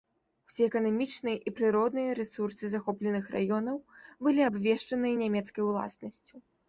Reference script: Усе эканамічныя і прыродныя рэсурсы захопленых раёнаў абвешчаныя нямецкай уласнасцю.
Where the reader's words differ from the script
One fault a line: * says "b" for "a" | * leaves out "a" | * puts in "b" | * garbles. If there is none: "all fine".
* puts in "былі"